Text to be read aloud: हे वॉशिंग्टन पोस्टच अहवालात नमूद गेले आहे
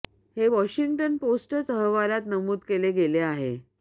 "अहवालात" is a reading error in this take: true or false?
false